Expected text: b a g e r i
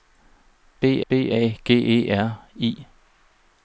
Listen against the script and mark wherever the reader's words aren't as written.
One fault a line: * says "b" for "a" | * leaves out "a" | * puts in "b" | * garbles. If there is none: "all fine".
* puts in "b"